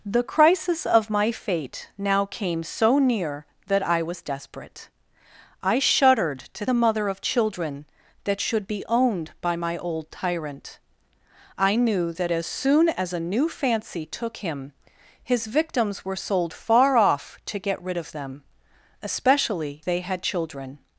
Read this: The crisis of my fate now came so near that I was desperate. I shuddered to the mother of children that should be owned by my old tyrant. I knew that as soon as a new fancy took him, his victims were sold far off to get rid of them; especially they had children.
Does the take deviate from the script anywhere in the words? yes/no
no